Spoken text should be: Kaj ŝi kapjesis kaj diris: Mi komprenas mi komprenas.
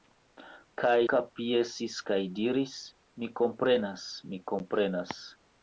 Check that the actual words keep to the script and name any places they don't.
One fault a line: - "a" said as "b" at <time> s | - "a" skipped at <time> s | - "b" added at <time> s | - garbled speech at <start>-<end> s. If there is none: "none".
- "ŝi" skipped at 0.9 s